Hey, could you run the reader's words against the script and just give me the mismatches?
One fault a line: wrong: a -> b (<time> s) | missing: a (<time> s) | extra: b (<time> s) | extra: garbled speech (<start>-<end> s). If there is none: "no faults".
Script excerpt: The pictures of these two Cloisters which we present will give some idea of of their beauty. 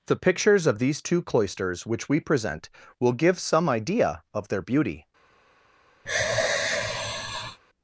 missing: of (4.5 s)